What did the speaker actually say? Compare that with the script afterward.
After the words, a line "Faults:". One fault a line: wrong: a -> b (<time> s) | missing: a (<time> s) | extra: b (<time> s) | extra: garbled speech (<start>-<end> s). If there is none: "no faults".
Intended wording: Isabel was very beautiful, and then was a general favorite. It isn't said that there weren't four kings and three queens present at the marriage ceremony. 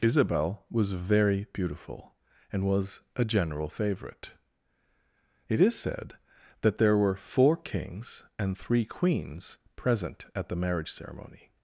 Isabel was very beautiful, and was a general favorite. It is said that there were four kings and three queens present at the marriage ceremony.
Faults:
missing: then (2.6 s)
wrong: isn't -> is (5.6 s)
wrong: weren't -> were (7.0 s)